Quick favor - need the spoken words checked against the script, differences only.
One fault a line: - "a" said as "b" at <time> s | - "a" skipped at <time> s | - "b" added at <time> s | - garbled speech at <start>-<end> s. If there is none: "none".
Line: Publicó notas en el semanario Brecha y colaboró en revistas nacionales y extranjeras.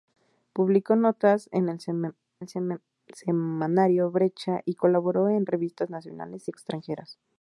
- "el" added at 2.4 s